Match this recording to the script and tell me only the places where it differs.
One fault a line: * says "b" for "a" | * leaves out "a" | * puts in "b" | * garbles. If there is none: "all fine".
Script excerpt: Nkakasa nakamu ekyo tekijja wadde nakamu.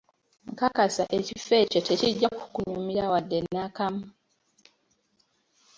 * says "ekifo" for "nakamu"
* puts in "kukunyumira"